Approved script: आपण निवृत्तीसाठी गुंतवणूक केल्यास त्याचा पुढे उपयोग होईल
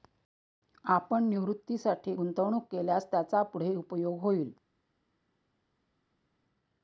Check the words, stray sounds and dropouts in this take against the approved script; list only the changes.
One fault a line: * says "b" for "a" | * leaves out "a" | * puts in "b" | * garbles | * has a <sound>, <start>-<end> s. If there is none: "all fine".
all fine